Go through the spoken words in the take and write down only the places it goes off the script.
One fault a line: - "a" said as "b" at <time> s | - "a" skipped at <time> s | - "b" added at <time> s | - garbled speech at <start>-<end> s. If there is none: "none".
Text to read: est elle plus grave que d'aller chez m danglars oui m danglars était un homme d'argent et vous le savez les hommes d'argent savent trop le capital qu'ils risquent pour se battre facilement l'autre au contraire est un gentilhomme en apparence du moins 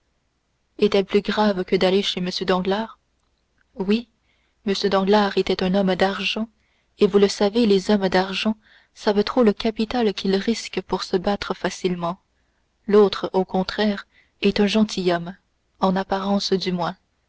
none